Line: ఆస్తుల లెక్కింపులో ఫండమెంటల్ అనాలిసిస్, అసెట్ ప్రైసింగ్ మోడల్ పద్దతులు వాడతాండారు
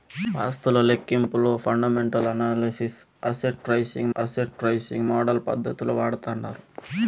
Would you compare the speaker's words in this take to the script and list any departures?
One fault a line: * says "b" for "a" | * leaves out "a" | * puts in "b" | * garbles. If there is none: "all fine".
* puts in "అసెట్ ప్రైసింగ్"